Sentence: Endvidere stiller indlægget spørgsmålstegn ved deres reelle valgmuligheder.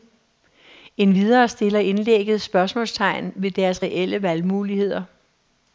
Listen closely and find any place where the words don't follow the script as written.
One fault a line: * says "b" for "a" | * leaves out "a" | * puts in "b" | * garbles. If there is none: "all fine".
all fine